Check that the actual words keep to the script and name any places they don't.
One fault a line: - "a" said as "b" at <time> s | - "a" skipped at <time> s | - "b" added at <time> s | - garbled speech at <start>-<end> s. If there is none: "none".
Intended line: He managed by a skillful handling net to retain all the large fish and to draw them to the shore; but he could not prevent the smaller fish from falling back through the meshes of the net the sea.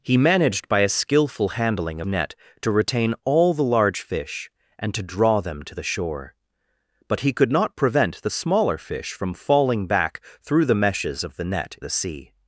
none